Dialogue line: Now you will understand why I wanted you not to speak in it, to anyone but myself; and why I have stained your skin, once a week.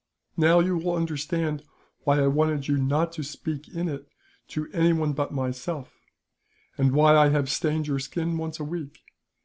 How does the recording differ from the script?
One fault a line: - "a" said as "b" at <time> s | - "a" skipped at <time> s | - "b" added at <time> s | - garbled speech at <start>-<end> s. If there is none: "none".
none